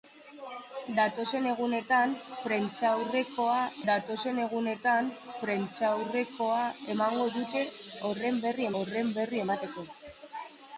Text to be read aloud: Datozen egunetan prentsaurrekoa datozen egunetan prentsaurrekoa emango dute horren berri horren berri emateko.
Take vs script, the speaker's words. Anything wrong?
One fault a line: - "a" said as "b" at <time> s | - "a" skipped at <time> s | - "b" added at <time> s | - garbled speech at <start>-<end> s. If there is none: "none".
none